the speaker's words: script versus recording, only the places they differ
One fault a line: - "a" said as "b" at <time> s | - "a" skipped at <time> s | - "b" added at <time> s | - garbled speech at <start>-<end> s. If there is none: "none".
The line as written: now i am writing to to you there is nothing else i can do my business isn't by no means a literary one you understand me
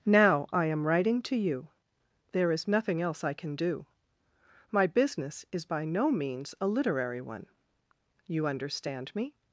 - "to" skipped at 1.4 s
- "isn't" said as "is" at 5.5 s